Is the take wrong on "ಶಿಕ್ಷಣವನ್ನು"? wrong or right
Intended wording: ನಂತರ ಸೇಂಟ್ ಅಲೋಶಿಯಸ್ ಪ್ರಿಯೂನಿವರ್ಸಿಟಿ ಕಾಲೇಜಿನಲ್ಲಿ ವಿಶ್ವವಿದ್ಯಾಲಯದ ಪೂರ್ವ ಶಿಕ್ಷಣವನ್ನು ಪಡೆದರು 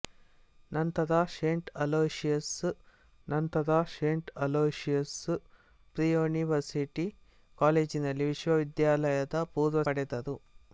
wrong